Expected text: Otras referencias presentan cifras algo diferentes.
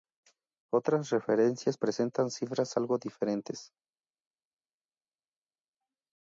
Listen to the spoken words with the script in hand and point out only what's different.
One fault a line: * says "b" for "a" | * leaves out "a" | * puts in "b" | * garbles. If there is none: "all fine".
all fine